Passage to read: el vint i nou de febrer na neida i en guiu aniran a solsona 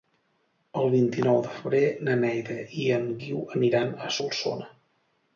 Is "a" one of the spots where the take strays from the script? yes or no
no